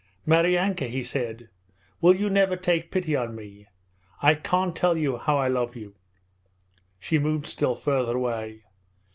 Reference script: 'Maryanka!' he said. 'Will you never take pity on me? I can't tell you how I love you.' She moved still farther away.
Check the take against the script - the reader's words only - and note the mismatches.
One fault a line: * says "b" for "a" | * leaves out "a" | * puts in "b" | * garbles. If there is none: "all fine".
all fine